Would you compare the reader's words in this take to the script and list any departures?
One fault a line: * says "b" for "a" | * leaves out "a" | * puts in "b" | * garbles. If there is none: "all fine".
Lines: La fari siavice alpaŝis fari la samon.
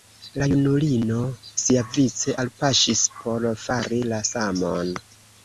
* says "junulino" for "fari"
* puts in "por"